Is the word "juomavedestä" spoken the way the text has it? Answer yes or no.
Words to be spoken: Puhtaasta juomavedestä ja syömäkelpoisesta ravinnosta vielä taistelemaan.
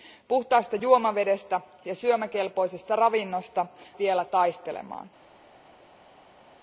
yes